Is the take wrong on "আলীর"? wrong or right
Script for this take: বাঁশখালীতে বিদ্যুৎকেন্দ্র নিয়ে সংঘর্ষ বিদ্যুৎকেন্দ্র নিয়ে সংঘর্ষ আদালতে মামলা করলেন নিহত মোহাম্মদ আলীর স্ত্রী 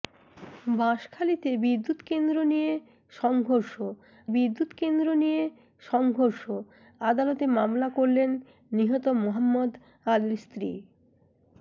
right